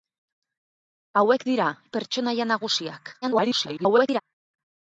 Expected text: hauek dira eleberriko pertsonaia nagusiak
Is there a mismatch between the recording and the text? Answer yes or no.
yes